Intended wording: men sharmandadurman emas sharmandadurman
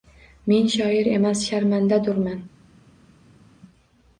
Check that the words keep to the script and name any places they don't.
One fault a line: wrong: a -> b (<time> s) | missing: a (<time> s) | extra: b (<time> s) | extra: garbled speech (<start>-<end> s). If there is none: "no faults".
wrong: sharmandadurman -> shoir (0.8 s)